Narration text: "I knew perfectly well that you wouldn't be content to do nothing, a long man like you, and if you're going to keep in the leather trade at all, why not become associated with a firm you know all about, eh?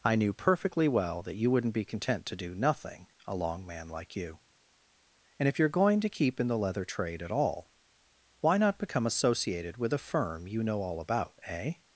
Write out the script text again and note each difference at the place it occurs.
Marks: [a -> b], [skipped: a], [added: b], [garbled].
"I knew perfectly well that you wouldn't be content to do nothing, a long man like you, and if you're going to keep in the leather trade at all, why not become associated with a firm you know all about, eh?